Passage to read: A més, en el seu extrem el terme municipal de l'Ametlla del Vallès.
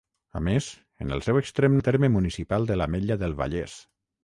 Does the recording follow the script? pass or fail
pass